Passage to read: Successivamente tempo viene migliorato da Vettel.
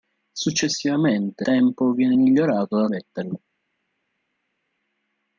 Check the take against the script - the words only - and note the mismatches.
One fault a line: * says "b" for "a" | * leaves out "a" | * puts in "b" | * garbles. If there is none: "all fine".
all fine